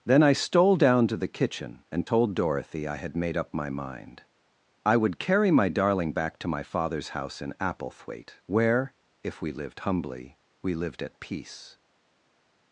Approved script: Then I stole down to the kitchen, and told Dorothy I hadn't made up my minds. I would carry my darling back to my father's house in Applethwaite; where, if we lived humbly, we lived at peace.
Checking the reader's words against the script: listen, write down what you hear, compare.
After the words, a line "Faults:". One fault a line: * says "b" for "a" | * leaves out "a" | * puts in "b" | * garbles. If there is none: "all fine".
Then I stole down to the kitchen, and told Dorothy I had made up my mind. I would carry my darling back to my father's house in Applethwaite; where, if we lived humbly, we lived at peace.
Faults:
* says "had" for "hadn't"
* says "mind" for "minds"